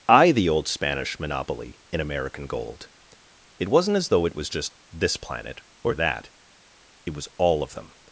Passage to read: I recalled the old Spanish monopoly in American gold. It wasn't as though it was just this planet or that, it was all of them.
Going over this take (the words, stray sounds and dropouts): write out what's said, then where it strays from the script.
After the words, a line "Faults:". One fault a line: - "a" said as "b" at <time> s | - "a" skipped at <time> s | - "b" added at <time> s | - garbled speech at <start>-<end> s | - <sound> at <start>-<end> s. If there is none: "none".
I the old Spanish monopoly in American gold. It wasn't as though it was just this planet or that, it was all of them.
Faults:
- "recalled" skipped at 0.3 s